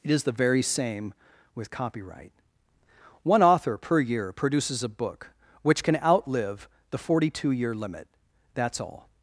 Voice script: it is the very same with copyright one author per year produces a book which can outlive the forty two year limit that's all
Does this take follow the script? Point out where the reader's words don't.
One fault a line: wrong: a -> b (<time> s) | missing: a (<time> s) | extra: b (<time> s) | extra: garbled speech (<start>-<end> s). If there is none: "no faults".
no faults